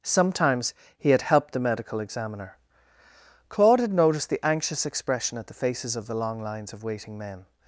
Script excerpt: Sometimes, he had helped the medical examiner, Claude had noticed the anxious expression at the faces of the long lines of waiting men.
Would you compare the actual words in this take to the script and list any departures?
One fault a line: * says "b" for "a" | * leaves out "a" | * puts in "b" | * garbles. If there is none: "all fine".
all fine